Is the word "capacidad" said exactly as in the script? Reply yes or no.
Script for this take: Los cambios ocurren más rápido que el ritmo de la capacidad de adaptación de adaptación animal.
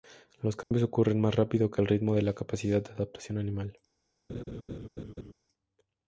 yes